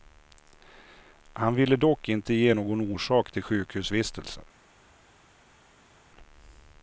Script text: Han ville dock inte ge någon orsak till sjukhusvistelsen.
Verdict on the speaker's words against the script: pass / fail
pass